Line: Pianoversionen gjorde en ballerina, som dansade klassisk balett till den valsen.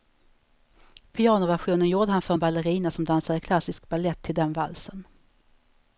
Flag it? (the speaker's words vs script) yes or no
yes